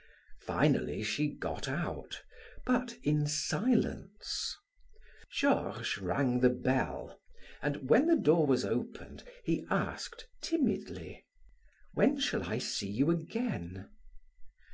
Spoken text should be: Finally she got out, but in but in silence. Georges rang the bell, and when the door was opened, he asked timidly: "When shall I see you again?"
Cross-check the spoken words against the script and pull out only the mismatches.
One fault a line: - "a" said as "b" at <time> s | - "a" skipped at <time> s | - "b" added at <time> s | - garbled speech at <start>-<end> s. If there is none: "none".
- "but in" skipped at 3.3 s